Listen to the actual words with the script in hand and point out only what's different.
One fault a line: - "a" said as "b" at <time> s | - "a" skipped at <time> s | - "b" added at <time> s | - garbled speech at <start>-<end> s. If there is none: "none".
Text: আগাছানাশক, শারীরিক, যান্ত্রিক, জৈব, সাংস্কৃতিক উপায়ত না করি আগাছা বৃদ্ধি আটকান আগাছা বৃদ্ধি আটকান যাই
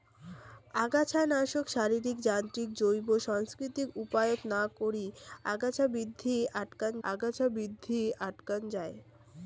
none